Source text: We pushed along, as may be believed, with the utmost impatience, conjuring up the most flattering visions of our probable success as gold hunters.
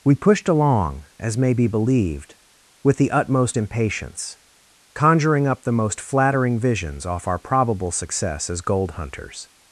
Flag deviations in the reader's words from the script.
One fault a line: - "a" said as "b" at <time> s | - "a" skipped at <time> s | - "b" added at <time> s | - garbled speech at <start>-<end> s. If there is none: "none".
- "of" said as "off" at 7.0 s